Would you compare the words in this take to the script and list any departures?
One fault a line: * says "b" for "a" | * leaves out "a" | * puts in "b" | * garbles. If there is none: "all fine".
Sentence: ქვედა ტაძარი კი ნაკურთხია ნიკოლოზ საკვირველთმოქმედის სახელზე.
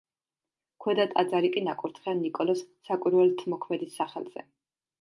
all fine